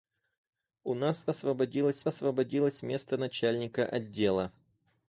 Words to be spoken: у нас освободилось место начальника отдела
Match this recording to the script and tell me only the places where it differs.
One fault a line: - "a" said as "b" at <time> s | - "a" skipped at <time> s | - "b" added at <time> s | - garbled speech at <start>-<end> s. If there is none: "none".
- "освободилось" added at 2.1 s